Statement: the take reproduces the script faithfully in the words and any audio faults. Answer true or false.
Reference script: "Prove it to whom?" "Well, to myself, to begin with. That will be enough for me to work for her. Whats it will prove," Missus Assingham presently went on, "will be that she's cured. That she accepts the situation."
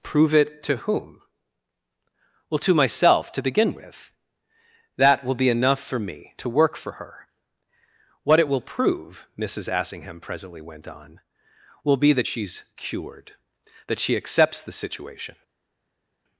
false